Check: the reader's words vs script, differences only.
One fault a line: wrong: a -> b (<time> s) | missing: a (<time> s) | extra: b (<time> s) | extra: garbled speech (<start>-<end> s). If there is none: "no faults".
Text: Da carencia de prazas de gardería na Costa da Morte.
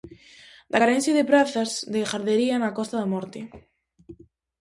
no faults